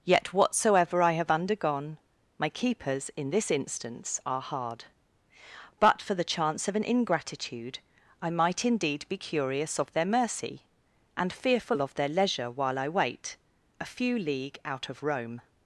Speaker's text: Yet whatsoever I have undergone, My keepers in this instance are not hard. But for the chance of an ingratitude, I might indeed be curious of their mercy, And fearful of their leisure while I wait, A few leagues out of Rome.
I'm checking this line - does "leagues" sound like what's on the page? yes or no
no